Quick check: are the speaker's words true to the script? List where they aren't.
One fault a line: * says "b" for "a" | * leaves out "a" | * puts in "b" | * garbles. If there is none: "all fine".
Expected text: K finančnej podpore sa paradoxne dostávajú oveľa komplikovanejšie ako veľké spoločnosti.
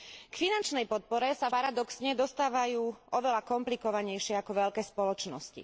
all fine